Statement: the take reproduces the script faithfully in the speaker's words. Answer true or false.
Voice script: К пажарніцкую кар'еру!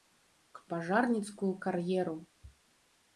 true